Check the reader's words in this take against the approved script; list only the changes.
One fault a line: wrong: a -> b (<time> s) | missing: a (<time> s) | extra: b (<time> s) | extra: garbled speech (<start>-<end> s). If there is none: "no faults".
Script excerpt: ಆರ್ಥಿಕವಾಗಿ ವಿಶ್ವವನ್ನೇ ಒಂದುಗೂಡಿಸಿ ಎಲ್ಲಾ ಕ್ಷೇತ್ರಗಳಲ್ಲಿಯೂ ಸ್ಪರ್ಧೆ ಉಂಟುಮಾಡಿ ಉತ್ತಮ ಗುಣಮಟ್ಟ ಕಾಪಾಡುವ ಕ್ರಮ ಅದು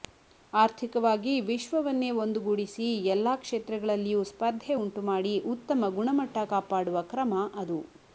no faults